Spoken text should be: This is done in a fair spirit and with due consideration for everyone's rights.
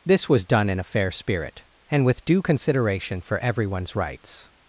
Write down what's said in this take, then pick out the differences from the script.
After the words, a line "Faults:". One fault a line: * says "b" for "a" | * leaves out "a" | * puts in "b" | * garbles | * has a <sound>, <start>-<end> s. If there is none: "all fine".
This was done in a fair spirit and with due consideration for everyone's rights.
Faults:
* says "was" for "is"